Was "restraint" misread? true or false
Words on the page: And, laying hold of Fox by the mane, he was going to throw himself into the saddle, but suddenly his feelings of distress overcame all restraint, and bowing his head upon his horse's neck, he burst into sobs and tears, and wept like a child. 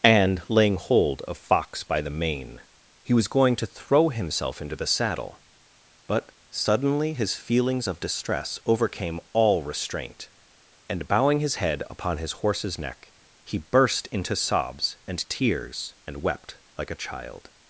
false